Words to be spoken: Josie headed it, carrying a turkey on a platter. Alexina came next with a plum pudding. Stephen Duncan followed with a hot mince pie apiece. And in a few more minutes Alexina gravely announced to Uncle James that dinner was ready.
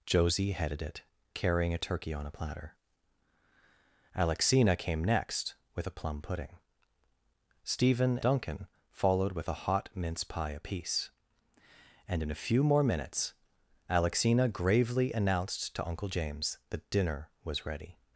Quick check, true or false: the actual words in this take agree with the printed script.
true